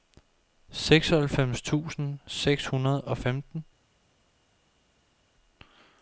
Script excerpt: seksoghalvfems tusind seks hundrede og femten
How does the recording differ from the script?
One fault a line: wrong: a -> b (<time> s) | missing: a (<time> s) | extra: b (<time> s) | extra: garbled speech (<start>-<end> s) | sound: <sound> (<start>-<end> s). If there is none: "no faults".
no faults